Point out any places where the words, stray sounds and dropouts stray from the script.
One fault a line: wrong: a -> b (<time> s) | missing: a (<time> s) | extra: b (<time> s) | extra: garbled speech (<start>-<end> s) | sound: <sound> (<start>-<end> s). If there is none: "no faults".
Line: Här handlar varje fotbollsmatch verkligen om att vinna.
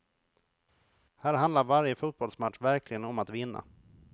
no faults